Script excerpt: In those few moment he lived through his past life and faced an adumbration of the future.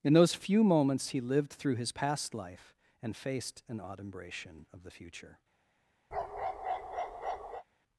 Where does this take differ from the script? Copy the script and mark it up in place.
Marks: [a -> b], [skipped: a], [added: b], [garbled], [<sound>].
In those few [moment -> moments] he lived through his past life and faced an adumbration of the future. [bark]